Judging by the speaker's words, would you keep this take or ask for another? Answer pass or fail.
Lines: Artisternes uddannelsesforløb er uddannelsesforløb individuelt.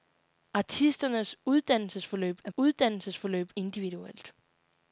pass